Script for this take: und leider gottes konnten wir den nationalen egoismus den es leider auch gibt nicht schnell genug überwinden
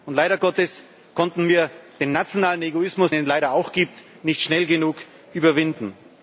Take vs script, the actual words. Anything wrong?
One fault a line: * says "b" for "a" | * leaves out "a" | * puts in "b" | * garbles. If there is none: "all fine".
* leaves out "den"